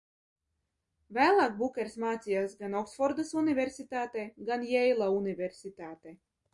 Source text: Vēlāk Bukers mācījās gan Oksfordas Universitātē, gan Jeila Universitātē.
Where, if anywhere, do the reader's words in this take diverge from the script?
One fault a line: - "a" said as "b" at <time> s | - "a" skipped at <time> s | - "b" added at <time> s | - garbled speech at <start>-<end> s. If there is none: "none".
none